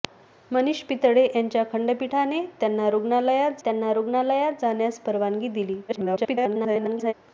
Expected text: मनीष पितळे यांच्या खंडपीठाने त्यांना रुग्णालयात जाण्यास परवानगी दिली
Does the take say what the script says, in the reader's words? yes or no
no